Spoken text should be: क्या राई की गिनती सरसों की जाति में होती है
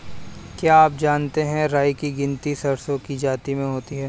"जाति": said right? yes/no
yes